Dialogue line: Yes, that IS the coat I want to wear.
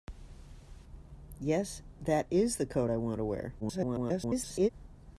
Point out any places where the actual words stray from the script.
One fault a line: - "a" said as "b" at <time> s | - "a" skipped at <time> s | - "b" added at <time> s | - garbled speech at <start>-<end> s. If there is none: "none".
- garbled speech at 3.6-4.7 s